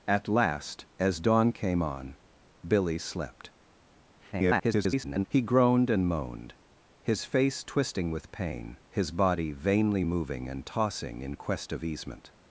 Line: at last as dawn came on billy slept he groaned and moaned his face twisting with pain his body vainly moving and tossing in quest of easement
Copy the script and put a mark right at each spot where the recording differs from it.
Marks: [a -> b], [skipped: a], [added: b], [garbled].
at last as dawn came on billy slept [garbled] he groaned and moaned his face twisting with pain his body vainly moving and tossing in quest of easement